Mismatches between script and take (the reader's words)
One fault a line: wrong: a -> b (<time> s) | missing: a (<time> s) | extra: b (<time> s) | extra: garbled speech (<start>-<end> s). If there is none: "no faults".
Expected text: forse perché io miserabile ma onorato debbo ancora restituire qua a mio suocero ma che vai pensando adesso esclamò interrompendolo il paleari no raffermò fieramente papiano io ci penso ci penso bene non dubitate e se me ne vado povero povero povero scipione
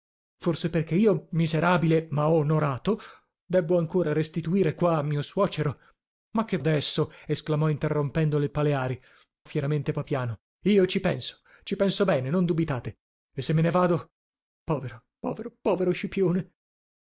missing: vai pensando (6.6 s)
missing: no raffermò (9.0 s)